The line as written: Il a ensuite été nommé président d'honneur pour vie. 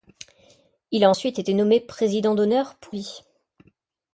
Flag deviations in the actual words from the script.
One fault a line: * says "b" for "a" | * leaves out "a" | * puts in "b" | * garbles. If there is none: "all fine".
all fine